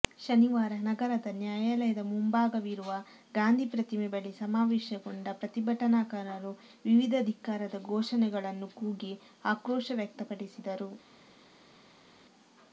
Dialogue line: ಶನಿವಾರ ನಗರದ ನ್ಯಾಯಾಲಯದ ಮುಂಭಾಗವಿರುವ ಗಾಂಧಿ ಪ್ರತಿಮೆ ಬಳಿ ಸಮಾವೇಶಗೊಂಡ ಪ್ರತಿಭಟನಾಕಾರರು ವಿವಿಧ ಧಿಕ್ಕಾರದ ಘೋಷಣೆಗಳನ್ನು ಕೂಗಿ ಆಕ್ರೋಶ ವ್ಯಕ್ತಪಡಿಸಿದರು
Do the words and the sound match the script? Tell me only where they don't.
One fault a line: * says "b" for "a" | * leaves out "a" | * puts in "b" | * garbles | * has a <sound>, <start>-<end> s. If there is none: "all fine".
all fine